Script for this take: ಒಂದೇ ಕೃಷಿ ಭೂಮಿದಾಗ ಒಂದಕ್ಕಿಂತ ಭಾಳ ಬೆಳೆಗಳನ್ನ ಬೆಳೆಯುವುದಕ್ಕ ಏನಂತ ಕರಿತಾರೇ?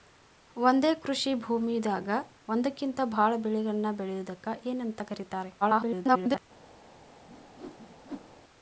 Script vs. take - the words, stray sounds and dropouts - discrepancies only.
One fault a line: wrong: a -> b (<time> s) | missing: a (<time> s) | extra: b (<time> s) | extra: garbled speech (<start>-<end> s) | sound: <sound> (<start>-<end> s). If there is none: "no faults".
extra: garbled speech (5.6-6.4 s)
sound: whoosh (7.3-8.4 s)